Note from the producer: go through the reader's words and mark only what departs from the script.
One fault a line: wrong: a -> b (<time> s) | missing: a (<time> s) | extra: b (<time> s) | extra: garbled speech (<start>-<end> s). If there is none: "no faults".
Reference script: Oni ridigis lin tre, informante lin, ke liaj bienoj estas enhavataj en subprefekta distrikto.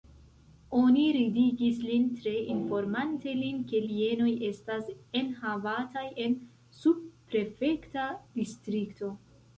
missing: liaj (3.8 s)